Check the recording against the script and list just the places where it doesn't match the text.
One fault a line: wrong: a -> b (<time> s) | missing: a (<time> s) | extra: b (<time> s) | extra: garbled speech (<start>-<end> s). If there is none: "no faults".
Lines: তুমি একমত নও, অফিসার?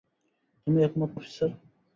missing: নও (1.1 s)